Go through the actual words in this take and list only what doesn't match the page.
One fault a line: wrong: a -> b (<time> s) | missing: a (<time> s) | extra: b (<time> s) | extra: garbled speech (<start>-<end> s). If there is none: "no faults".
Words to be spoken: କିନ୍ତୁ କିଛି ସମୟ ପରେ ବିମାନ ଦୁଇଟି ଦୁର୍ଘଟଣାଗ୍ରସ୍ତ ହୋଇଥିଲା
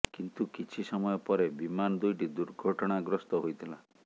no faults